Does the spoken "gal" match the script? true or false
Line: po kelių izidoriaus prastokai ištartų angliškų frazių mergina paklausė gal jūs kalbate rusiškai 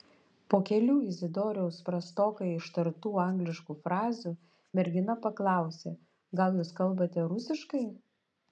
true